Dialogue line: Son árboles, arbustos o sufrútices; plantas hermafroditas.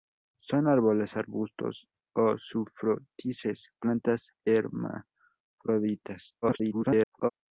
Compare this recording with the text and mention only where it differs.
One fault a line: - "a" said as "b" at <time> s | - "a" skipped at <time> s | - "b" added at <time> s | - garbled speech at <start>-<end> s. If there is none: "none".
- garbled speech at 6.4-7.3 s